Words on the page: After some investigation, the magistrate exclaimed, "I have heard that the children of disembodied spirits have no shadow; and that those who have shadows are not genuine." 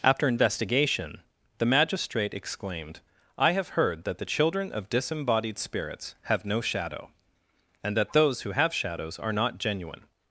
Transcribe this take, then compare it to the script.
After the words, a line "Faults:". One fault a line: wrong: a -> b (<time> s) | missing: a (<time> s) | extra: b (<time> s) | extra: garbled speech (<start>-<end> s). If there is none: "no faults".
After investigation, the magistrate exclaimed, "I have heard that the children of disembodied spirits have no shadow; and that those who have shadows are not genuine."
Faults:
missing: some (0.3 s)